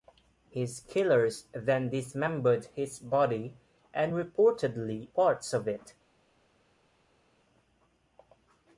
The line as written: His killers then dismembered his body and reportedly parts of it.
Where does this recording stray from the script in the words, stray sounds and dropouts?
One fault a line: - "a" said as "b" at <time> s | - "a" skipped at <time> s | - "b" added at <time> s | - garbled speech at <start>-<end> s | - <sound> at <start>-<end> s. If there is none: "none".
none